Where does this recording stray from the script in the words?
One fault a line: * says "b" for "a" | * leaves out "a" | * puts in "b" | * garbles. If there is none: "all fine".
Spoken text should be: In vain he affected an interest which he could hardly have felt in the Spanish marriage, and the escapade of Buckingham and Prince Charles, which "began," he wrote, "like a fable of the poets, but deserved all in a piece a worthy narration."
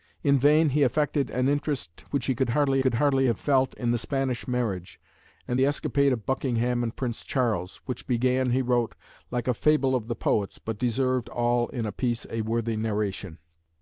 * puts in "could hardly"